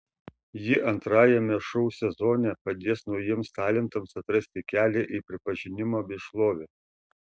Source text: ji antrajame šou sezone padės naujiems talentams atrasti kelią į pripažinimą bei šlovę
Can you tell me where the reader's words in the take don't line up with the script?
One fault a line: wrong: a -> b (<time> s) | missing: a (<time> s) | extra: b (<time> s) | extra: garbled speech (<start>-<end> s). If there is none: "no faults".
no faults